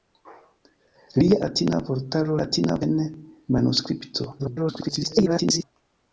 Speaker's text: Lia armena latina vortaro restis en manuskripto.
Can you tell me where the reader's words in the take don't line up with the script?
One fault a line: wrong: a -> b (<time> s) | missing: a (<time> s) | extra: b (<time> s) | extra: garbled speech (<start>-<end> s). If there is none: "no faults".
missing: armena (1.4 s)
wrong: restis -> latina (2.4 s)
extra: garbled speech (4.4-5.6 s)